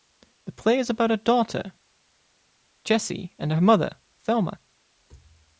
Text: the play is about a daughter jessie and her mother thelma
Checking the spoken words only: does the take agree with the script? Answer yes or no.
yes